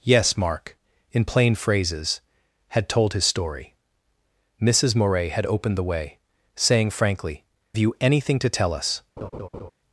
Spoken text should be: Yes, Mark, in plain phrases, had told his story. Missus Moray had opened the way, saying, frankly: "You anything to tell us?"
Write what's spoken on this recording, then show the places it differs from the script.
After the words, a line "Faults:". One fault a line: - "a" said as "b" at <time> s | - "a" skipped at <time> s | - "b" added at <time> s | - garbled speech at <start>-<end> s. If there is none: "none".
Yes, Mark, in plain phrases, had told his story. Missus Moray had opened the way, saying, frankly: "You anything to tell us?"
Faults:
none